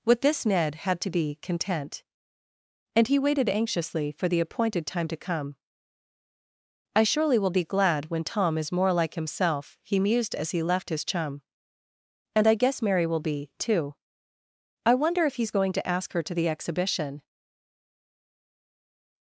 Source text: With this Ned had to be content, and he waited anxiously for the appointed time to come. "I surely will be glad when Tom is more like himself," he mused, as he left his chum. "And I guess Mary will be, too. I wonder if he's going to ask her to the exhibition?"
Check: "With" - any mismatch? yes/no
no